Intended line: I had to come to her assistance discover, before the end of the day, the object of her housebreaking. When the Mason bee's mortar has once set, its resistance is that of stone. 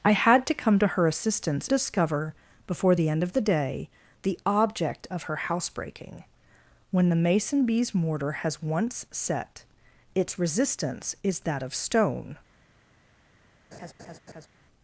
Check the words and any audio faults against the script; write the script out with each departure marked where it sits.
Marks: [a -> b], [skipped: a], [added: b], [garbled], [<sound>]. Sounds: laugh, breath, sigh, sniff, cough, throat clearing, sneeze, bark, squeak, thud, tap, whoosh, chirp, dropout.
I had to come to her assistance discover, before the end of the day, the object of her housebreaking. When the Mason bee's mortar has once set, its resistance is that of stone. [laugh]